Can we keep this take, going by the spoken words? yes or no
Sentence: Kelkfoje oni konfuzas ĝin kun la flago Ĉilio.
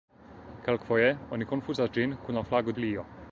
yes